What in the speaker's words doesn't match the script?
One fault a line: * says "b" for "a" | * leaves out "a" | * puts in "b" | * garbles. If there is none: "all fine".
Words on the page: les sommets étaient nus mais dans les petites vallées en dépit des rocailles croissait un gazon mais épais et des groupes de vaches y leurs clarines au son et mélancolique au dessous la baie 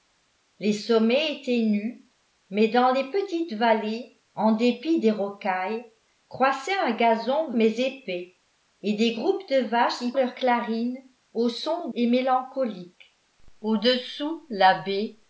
all fine